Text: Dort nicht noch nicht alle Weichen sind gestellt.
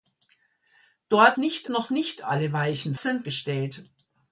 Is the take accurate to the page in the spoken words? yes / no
yes